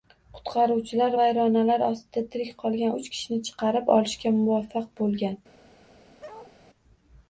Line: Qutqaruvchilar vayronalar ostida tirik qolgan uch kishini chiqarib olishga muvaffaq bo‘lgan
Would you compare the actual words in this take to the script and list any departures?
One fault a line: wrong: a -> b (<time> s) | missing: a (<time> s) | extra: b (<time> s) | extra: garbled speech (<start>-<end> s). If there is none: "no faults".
no faults